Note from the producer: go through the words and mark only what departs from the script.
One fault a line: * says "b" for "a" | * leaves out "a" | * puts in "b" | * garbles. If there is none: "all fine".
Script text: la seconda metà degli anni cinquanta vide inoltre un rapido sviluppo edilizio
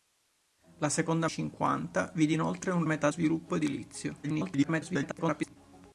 * leaves out "metà degli anni"
* says "metà" for "rapido"
* garbles